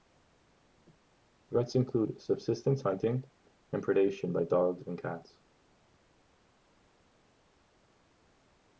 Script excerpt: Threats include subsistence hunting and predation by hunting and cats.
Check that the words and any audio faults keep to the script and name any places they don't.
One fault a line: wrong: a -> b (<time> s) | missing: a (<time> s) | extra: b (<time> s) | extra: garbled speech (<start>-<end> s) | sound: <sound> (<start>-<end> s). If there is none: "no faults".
wrong: hunting -> dogs (4.5 s)